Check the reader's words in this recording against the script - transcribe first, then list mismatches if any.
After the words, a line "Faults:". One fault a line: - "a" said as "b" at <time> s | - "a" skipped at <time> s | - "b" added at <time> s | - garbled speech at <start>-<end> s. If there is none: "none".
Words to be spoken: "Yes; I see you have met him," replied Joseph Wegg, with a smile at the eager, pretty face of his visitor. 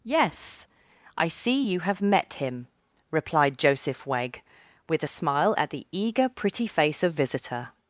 "Yes; I see you have met him," replied Joseph Wegg, with a smile at the eager, pretty face of visitor.
Faults:
- "his" skipped at 7.1 s